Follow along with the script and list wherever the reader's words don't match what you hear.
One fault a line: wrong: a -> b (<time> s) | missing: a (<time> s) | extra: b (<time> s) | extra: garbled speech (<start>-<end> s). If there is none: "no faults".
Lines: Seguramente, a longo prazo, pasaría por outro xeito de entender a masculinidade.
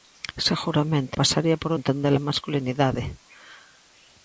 missing: a longo prazo (1.1 s)
missing: outro xeito de (1.7 s)